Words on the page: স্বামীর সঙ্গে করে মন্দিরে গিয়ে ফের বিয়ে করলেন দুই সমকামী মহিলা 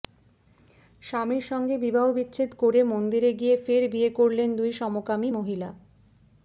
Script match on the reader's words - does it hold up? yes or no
no